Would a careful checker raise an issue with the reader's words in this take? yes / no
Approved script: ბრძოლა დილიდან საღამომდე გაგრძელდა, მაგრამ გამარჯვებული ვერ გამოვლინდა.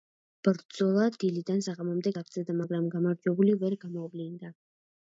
no